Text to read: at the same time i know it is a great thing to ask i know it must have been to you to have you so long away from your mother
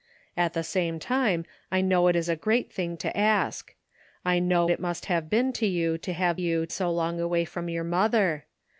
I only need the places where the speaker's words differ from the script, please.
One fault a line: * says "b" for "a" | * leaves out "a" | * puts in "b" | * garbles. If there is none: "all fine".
all fine